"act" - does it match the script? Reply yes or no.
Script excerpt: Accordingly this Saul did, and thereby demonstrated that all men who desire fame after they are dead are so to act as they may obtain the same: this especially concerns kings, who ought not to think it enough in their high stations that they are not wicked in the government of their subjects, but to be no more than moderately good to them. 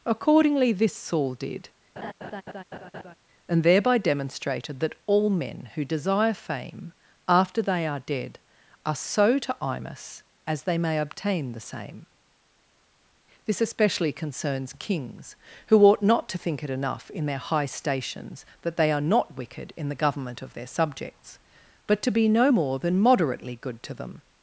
no